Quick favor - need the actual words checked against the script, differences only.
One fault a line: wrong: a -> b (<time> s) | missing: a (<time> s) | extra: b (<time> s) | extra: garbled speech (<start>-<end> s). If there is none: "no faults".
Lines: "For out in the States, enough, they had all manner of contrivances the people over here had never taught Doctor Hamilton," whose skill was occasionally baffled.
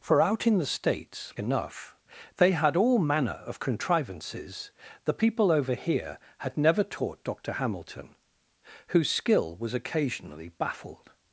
no faults